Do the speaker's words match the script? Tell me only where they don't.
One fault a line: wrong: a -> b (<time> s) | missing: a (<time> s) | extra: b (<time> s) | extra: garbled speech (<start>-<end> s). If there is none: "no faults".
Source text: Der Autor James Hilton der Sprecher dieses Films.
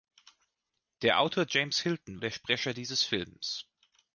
no faults